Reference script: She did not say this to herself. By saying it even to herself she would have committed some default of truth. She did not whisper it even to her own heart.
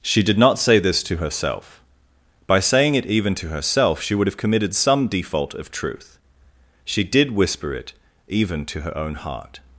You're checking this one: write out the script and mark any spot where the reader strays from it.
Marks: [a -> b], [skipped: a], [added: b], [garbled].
She did not say this to herself. By saying it even to herself she would have committed some default of truth. She did [skipped: not] whisper it even to her own heart.